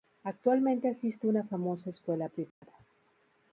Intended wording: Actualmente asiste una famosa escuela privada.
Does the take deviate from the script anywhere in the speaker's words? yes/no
no